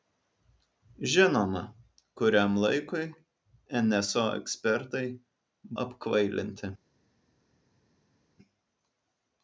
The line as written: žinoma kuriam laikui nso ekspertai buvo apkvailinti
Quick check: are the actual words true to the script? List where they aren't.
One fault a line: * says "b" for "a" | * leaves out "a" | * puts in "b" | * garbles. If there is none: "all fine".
* leaves out "buvo"